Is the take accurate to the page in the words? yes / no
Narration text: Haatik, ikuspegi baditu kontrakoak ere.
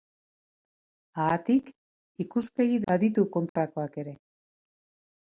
yes